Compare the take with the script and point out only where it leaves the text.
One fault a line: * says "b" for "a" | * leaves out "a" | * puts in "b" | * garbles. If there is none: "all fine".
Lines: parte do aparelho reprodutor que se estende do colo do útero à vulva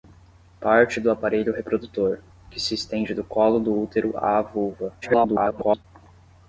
* garbles